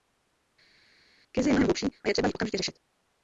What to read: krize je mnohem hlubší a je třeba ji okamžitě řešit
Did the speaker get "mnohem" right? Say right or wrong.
right